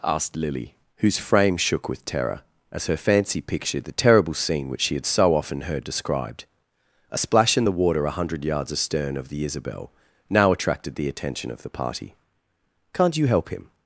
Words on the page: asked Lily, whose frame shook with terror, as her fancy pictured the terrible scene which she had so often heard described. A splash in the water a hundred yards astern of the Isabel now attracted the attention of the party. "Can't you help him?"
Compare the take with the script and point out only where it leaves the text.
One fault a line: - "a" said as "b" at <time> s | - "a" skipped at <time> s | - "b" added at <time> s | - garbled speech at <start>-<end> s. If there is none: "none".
none